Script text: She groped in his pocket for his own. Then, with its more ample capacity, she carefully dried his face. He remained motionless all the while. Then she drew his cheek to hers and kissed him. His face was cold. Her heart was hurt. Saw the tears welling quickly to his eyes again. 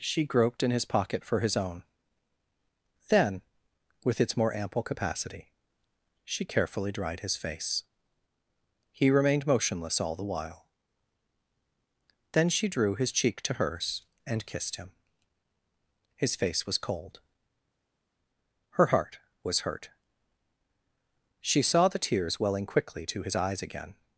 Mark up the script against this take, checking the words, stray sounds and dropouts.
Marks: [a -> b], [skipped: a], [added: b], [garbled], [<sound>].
She groped in his pocket for his own. Then, with its more ample capacity, she carefully dried his face. He remained motionless all the while. Then she drew his cheek to hers and kissed him. His face was cold. Her heart was hurt. [added: She] Saw the tears welling quickly to his eyes again.